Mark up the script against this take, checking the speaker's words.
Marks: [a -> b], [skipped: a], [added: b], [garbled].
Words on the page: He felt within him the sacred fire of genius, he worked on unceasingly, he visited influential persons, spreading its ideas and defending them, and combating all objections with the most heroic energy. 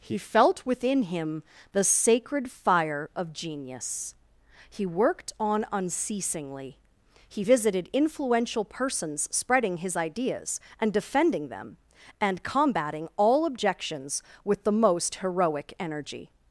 He felt within him the sacred fire of genius, he worked on unceasingly, he visited influential persons, spreading [its -> his] ideas and defending them, and combating all objections with the most heroic energy.